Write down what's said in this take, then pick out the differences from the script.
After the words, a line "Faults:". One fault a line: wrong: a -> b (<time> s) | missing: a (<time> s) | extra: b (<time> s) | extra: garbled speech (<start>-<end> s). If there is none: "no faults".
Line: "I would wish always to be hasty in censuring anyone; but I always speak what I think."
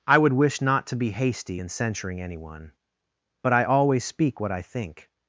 "I would wish not to be hasty in censuring anyone; but I always speak what I think."
Faults:
wrong: always -> not (0.6 s)